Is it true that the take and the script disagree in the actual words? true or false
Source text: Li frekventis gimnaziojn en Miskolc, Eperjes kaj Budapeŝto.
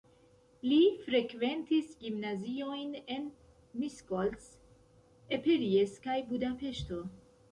false